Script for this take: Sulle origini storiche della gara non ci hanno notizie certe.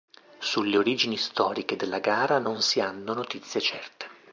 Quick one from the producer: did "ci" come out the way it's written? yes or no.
no